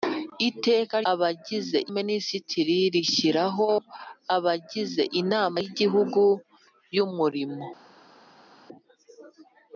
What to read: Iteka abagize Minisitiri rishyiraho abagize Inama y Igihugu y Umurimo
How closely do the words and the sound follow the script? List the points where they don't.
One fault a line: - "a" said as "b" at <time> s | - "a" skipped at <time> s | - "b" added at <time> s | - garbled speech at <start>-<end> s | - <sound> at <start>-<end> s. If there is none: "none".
none